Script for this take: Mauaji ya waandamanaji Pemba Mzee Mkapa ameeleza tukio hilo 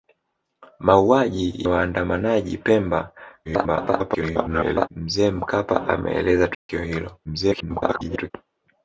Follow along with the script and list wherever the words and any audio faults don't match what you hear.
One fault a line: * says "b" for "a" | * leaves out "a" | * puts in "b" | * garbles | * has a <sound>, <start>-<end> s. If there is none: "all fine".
* leaves out "ya"
* garbles
* has a dropout, 6.5-6.7 s
* garbles